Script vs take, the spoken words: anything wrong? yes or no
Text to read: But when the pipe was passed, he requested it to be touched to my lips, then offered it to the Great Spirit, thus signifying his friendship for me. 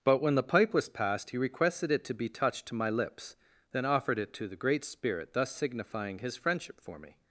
no